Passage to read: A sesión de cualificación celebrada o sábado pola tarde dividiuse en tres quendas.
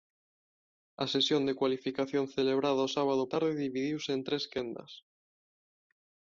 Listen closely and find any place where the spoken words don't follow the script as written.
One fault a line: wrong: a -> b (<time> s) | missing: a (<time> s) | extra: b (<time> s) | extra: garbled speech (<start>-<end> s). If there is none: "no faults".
missing: pola (3.2 s)